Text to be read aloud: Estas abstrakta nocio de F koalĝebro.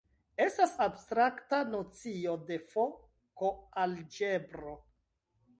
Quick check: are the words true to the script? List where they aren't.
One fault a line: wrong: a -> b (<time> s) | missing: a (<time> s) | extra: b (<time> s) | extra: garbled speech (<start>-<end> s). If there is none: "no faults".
no faults